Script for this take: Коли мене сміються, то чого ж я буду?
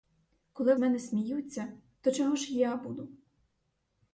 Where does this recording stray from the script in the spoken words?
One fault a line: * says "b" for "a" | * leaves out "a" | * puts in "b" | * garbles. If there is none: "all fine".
all fine